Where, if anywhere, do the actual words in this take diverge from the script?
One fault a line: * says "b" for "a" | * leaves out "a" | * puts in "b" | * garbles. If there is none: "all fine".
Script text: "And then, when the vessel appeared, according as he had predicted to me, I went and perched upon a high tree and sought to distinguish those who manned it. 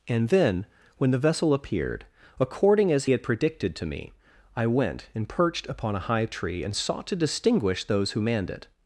* leaves out "he"